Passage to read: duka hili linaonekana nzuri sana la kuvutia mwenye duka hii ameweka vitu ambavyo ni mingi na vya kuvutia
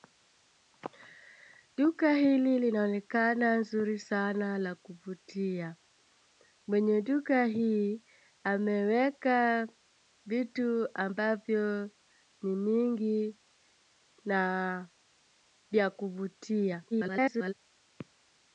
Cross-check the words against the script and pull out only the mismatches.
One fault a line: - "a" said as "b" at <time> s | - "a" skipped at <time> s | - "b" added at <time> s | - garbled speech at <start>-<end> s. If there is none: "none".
- garbled speech at 16.9-17.5 s